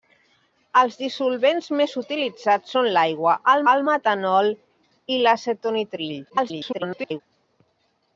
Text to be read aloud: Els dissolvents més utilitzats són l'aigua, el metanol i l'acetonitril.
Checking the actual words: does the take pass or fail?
fail